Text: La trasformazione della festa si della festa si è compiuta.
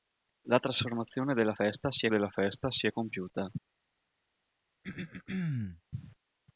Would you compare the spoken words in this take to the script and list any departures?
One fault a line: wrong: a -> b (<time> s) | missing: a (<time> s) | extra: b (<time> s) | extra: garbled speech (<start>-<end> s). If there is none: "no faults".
no faults